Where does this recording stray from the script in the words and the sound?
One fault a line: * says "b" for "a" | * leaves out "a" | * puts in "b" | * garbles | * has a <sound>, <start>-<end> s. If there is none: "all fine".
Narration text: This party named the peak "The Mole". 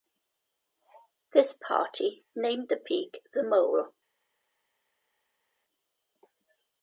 all fine